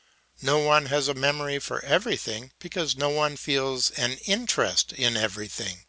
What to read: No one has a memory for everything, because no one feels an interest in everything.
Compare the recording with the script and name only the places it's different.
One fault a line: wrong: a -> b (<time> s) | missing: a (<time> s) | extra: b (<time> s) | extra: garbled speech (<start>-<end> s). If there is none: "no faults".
no faults